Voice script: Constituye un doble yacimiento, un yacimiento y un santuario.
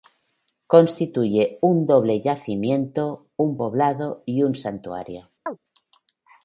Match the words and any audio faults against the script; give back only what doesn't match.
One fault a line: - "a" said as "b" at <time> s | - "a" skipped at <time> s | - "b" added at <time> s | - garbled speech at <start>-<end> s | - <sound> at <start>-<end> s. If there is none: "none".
- "yacimiento" said as "poblado" at 3.5 s
- chirp at 5.5-5.6 s